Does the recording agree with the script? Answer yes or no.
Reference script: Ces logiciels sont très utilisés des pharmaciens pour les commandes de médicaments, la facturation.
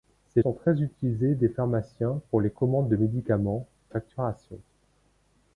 no